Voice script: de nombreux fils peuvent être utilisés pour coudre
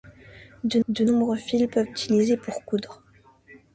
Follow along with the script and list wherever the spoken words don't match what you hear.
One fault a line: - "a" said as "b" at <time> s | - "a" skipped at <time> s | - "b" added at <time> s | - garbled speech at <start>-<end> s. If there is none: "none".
- "de" added at 0.9 s
- "être" skipped at 1.9 s